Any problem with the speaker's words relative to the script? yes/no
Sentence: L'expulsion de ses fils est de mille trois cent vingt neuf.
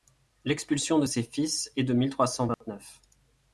no